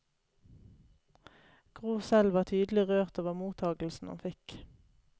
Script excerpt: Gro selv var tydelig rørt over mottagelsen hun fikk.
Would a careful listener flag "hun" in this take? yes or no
no